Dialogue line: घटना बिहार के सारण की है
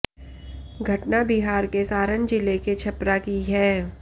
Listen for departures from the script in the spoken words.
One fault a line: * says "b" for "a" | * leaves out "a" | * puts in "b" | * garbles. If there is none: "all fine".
* puts in "जिले के छपरा"